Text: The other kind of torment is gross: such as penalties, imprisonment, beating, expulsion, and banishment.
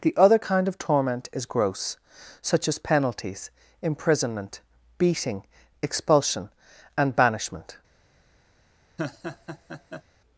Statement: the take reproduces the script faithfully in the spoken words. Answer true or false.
true